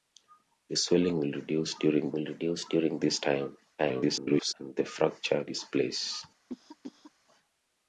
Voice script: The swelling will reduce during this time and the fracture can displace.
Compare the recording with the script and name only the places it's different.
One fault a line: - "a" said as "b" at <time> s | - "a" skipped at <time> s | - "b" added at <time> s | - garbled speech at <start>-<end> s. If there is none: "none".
- "will reduce during" added at 2.1 s
- garbled speech at 3.8-4.5 s
- "can" skipped at 5.4 s